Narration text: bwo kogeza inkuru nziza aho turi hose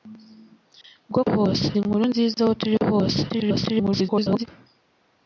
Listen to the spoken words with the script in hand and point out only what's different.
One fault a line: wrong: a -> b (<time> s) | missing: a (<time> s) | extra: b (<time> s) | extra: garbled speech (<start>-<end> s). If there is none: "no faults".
wrong: kogeza -> hose (1.3 s)
extra: garbled speech (3.3-4.5 s)